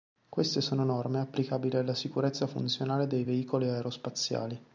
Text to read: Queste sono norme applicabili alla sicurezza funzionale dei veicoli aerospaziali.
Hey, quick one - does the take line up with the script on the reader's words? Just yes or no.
yes